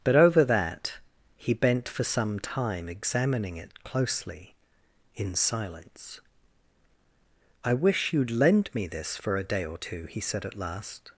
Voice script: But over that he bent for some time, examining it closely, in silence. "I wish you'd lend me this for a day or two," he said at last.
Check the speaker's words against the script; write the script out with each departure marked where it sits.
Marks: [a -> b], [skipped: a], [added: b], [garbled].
But over that he bent for some time, examining it closely, in silence. "I wish you'd lend me this for a day or two," he said at last.